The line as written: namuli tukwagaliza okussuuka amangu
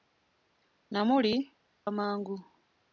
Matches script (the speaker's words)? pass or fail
fail